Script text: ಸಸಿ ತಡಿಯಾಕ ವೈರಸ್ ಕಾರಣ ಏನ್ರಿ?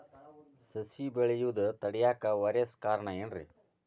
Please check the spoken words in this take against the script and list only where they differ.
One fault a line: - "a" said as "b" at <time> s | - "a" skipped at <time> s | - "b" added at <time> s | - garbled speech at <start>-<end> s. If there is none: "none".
- "ಬೆಳೆಯುದ" added at 1.1 s